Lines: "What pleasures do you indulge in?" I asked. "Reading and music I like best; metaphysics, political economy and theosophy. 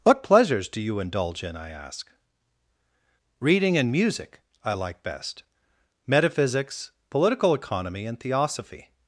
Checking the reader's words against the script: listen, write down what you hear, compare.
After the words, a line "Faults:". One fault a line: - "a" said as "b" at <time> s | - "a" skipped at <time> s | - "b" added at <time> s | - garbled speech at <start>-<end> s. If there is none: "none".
"What pleasures do you indulge in?" I ask. "Reading and music I like best; metaphysics, political economy and theosophy.
Faults:
- "asked" said as "ask" at 1.7 s